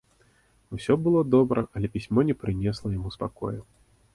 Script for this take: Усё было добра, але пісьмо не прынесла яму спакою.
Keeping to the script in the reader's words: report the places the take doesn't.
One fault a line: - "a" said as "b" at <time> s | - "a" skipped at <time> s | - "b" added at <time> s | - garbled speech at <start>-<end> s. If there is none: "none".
none